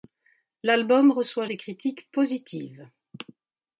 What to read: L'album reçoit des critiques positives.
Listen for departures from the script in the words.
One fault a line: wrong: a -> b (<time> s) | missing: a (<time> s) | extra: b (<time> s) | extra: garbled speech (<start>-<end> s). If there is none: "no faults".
no faults